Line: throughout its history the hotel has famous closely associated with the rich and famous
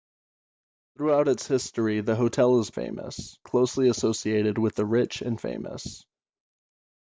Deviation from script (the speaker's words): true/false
false